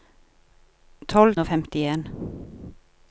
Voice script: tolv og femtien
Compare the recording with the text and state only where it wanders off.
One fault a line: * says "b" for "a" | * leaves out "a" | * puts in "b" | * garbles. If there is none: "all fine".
all fine